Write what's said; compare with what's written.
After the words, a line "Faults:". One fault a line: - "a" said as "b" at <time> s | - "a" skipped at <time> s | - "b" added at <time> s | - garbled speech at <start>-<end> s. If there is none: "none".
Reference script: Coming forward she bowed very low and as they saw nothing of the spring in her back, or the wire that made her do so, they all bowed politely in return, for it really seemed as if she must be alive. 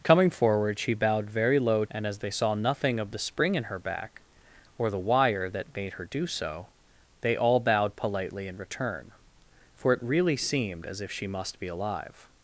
Coming forward she bowed very low and as they saw nothing of the spring in her back, or the wire that made her do so, they all bowed politely in return, for it really seemed as if she must be alive.
Faults:
none